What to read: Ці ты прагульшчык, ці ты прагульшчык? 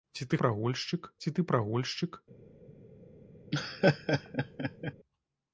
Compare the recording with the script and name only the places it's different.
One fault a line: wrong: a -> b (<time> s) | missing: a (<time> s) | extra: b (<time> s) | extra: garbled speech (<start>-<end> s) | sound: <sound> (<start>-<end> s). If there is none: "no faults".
sound: laugh (3.5-4.9 s)